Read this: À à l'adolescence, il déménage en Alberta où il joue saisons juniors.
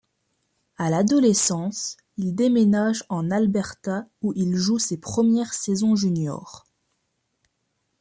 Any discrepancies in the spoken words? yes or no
yes